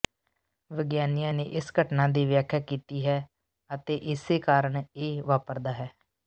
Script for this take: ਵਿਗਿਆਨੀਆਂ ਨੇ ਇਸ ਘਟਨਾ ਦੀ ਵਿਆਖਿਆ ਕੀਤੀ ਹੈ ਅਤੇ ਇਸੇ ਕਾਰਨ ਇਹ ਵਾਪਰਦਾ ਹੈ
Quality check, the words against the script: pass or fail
pass